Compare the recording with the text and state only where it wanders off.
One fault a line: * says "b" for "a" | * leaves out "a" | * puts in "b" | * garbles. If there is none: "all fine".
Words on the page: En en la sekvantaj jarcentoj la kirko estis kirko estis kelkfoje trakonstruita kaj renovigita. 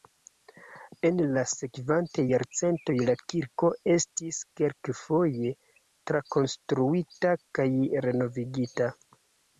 * leaves out "en"
* leaves out "kirko estis"